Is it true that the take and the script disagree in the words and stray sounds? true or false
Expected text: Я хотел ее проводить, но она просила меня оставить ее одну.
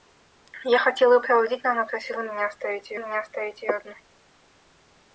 true